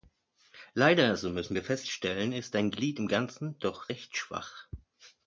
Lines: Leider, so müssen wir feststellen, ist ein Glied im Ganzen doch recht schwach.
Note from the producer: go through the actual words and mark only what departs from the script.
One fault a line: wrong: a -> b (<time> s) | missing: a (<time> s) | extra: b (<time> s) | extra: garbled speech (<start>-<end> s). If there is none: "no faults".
no faults